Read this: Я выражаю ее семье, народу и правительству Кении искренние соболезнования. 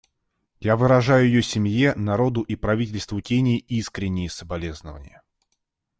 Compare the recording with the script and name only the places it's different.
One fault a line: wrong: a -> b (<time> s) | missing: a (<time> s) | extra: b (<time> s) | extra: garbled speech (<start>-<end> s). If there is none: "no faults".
no faults